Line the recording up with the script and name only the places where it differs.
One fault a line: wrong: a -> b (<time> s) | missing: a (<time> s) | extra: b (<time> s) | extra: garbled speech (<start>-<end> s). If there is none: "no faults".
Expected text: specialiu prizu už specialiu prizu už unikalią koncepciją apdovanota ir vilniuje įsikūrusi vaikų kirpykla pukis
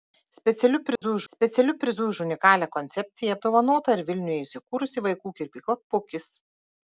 no faults